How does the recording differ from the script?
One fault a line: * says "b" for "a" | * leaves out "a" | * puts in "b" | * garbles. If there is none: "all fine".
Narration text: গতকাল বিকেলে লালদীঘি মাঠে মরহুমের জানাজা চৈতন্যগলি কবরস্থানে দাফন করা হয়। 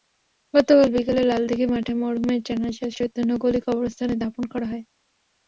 all fine